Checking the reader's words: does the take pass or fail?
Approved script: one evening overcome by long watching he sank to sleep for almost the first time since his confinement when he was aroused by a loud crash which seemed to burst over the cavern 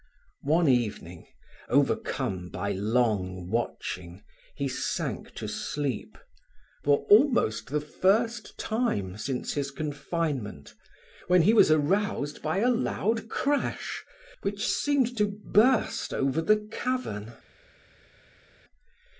pass